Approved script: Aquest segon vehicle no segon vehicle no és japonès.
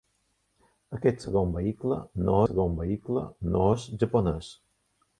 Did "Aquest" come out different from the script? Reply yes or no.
no